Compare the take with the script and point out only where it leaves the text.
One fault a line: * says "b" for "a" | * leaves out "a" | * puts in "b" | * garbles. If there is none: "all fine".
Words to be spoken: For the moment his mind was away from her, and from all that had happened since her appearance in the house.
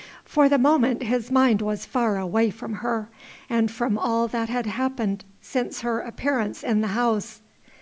* puts in "far"